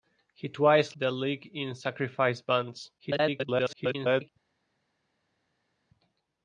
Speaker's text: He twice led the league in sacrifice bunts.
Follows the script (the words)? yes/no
no